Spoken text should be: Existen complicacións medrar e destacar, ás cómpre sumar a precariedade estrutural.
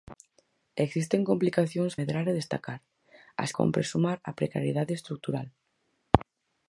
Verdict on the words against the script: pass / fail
pass